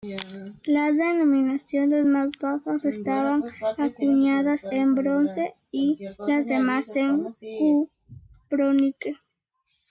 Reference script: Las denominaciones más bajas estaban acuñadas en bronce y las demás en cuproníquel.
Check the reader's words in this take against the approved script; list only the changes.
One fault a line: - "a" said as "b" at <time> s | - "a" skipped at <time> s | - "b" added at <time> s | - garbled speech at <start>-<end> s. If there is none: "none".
none